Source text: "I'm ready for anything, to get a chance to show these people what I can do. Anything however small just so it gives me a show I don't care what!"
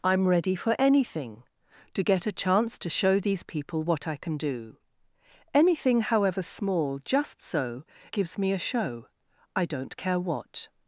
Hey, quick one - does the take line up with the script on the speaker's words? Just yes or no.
no